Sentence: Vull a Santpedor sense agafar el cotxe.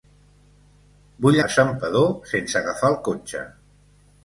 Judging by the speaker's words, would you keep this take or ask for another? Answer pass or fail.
pass